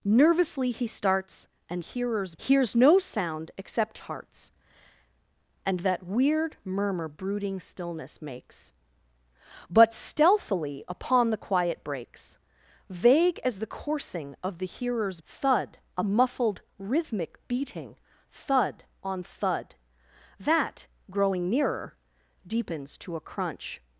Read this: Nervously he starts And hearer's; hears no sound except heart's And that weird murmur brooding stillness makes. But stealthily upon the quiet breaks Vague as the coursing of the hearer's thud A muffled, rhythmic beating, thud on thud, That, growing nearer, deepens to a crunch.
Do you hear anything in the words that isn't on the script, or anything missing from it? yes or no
no